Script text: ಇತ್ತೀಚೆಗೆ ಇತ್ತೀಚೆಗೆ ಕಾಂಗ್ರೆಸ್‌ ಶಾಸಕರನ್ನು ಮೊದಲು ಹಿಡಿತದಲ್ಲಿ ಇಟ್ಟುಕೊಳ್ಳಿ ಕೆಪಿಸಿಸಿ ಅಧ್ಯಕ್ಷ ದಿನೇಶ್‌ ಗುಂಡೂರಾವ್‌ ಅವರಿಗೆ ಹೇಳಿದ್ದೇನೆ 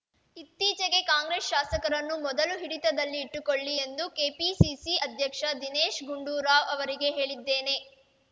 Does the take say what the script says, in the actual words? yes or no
no